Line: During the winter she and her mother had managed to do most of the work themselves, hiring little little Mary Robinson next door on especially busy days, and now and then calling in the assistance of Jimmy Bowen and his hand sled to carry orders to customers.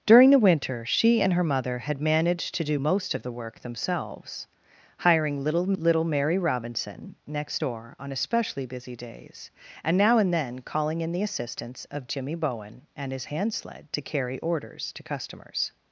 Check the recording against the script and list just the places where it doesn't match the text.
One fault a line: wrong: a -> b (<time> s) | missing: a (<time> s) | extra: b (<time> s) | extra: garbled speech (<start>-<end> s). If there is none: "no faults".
no faults